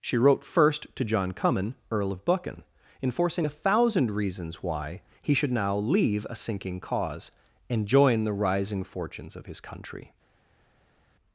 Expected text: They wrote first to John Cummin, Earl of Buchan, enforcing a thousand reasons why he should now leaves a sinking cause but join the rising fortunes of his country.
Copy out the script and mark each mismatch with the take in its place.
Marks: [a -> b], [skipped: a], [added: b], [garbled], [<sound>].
[They -> She] wrote first to John Cummin, Earl of Buchan, enforcing a thousand reasons why he should now [leaves -> leave] a sinking cause [but -> and] join the rising fortunes of his country.